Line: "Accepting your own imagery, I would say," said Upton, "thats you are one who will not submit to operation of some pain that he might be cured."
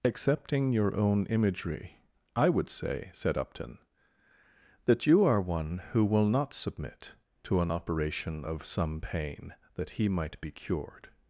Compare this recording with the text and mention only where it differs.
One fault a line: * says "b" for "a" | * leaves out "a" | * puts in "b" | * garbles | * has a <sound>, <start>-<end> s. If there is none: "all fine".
* says "that" for "thats"
* puts in "an"